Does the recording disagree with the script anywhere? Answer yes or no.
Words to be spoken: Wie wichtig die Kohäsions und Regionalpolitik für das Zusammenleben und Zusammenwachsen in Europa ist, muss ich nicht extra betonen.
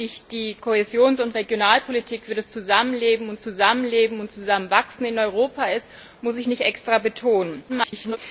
yes